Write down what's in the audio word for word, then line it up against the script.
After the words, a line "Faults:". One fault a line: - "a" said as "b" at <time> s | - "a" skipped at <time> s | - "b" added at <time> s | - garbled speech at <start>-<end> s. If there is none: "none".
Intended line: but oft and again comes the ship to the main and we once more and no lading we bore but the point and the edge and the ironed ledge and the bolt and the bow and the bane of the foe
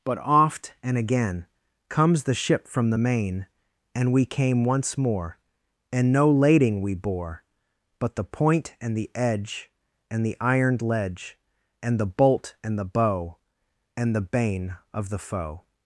but oft and again comes the ship from the main and we came once more and no lading we bore but the point and the edge and the ironed ledge and the bolt and the bow and the bane of the foe
Faults:
- "to" said as "from" at 2.7 s
- "came" added at 4.2 s